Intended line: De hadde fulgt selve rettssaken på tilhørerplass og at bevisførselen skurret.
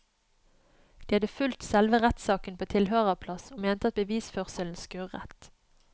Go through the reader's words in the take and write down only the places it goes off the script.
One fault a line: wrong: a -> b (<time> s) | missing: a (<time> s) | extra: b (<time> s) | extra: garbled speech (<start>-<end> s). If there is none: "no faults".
extra: mente (3.7 s)